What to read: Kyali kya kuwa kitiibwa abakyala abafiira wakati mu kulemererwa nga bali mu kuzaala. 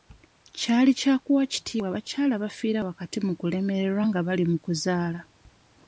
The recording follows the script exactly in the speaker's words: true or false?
true